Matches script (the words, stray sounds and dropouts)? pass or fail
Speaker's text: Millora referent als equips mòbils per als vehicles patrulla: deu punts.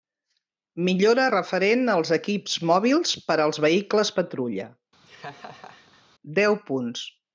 fail